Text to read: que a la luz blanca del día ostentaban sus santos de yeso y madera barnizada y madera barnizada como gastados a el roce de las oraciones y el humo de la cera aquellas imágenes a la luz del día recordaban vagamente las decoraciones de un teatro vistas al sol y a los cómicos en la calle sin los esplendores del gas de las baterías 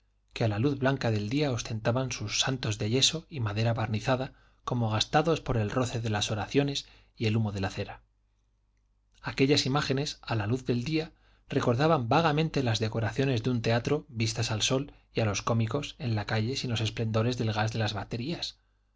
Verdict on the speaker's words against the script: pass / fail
fail